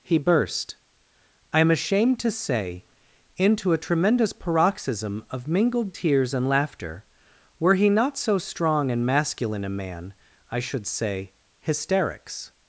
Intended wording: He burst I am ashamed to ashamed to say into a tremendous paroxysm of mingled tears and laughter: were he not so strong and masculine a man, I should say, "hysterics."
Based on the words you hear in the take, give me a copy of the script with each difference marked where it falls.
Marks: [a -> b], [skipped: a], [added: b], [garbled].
He burst I am ashamed to [skipped: ashamed to] say into a tremendous paroxysm of mingled tears and laughter: were he not so strong and masculine a man, I should say, "hysterics."